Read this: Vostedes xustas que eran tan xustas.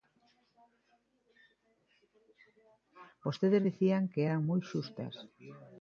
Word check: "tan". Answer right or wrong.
wrong